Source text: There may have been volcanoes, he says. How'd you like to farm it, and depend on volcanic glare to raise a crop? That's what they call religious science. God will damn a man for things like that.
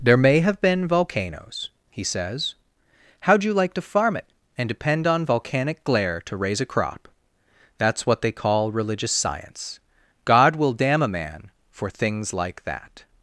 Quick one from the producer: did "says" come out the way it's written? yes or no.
yes